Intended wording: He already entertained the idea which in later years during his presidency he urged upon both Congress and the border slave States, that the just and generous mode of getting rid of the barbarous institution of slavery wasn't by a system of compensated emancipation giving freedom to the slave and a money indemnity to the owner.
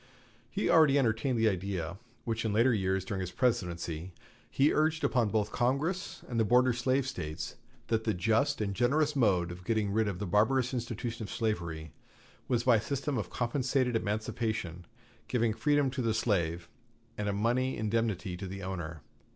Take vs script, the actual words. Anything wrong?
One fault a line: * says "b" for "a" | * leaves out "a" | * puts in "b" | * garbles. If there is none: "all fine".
* says "was" for "wasn't"